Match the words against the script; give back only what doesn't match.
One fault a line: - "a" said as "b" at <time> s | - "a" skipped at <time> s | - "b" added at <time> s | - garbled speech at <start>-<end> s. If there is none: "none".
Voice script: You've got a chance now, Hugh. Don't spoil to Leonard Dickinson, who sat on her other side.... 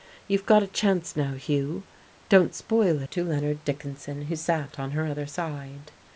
none